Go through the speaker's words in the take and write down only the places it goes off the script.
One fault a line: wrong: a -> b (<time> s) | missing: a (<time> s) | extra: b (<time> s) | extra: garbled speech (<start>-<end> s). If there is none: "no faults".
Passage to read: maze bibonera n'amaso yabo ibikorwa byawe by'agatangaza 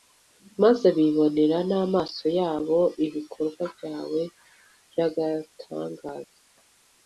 no faults